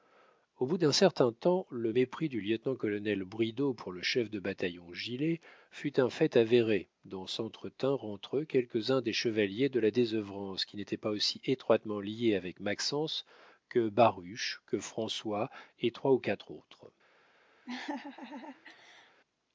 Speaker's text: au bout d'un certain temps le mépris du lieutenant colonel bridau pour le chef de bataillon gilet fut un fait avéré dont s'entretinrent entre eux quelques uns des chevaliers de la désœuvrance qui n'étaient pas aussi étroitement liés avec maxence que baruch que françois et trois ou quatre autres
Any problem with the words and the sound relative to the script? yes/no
yes